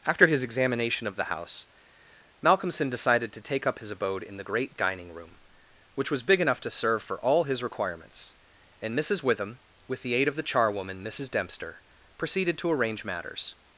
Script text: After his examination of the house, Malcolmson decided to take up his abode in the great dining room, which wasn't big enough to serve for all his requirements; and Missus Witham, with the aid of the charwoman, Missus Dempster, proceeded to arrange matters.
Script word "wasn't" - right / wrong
wrong